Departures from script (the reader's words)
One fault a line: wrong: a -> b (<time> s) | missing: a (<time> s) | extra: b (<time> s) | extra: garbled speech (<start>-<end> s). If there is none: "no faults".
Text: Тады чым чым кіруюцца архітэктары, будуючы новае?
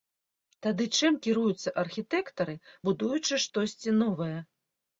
missing: чым (1.2 s)
extra: штосьці (3.5 s)